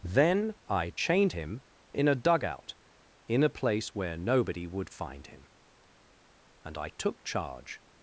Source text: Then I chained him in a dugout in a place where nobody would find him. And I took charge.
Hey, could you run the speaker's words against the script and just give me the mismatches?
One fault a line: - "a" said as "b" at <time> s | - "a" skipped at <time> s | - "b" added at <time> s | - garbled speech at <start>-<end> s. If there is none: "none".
none